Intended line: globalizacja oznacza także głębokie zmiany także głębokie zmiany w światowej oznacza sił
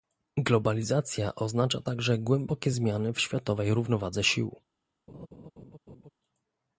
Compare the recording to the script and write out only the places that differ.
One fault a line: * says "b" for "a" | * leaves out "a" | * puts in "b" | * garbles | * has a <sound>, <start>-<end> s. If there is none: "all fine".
* leaves out "także głębokie zmiany"
* says "równowadze" for "oznacza"
* has a laugh, 5.1-6.1 s